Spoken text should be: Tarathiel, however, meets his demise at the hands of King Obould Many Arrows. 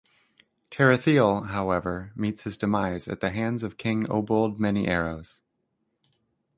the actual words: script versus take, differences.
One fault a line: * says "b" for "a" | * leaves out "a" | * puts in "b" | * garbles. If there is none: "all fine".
all fine